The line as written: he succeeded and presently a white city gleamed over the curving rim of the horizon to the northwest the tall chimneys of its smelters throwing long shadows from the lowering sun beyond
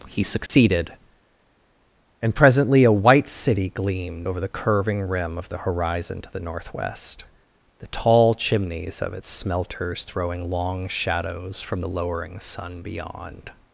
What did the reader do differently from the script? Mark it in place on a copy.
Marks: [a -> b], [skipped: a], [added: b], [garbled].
he succeeded and presently a white city gleamed over the curving rim of the horizon to the northwest the tall chimneys of its smelters throwing long shadows from the lowering sun beyond